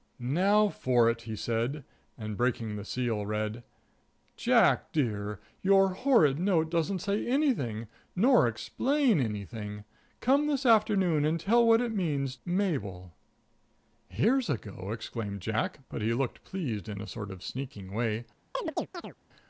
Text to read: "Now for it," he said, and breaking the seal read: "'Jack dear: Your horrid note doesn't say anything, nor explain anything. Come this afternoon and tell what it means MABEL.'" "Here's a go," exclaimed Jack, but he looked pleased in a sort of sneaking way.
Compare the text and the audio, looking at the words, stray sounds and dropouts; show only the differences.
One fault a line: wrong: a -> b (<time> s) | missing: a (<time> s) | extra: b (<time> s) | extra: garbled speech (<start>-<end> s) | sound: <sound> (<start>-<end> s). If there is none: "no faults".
sound: chirp (18.5-19.1 s)